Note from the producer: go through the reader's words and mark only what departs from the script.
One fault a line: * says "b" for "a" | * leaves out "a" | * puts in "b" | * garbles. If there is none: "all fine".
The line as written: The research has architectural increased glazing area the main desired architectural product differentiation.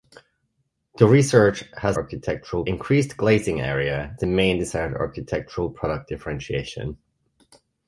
all fine